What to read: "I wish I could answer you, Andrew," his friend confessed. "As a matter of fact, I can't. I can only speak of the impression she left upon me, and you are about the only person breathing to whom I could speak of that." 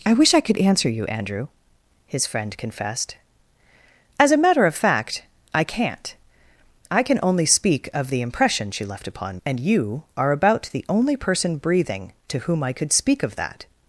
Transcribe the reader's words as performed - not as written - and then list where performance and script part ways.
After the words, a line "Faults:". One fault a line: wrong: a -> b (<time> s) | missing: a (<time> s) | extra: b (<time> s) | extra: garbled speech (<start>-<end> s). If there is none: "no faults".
"I wish I could answer you, Andrew," his friend confessed. "As a matter of fact, I can't. I can only speak of the impression she left upon and you are about the only person breathing to whom I could speak of that."
Faults:
missing: me (9.4 s)